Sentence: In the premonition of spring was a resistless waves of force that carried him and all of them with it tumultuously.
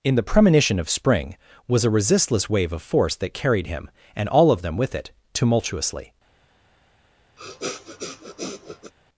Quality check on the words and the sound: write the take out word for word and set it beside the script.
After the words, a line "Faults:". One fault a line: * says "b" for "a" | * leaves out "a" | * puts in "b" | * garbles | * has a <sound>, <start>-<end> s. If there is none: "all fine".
In the premonition of spring was a resistless wave of force that carried him and all of them with it tumultuously.
Faults:
* says "wave" for "waves"
* has a sniff, 7.4-8.9 s